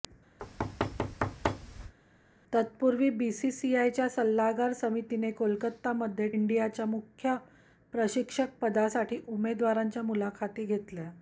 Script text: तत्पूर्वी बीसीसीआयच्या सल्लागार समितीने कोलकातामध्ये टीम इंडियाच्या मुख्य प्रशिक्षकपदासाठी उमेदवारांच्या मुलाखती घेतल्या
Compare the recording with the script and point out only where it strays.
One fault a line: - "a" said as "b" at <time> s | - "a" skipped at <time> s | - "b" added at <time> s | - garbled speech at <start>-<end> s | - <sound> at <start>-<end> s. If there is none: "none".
- thud at 0.4-1.9 s
- "टीम" skipped at 6.3 s